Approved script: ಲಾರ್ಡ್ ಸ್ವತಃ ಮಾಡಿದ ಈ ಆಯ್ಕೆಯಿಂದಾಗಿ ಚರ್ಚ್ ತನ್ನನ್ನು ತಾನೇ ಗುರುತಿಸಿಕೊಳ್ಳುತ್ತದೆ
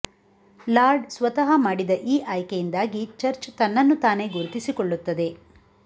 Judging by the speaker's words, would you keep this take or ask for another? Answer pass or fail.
pass